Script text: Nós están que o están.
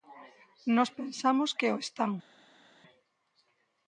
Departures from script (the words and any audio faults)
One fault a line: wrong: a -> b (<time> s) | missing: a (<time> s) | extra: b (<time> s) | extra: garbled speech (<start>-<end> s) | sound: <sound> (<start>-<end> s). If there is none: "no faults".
wrong: están -> pensamos (1.0 s)